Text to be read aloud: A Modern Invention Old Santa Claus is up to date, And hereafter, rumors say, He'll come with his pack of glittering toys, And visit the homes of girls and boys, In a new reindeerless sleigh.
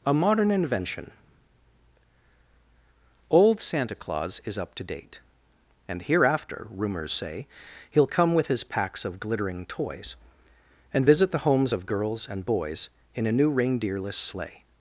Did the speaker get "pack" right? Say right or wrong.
wrong